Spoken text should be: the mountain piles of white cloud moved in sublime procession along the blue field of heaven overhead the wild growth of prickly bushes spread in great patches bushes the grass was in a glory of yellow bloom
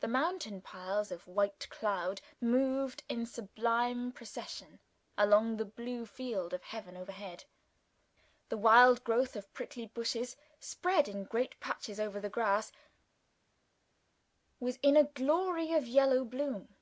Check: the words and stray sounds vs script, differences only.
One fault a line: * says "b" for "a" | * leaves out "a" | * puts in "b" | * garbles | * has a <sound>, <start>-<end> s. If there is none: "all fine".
* says "over" for "bushes"